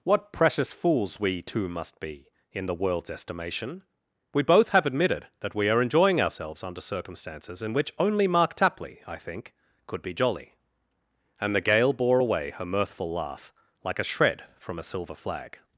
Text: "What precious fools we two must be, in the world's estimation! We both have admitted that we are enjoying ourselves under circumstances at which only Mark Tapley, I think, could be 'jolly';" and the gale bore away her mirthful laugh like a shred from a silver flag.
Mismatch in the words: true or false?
true